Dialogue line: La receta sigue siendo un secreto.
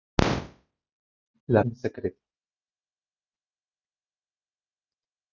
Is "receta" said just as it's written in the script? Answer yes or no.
no